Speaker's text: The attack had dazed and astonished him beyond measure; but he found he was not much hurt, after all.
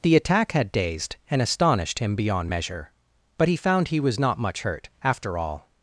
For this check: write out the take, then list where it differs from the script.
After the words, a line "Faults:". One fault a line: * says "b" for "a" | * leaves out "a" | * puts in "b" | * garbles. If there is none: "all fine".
The attack had dazed and astonished him beyond measure; but he found he was not much hurt, after all.
Faults:
all fine